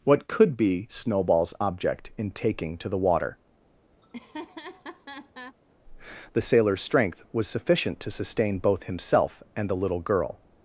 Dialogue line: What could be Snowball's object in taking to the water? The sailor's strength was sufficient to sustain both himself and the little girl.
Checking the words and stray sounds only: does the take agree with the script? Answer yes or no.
no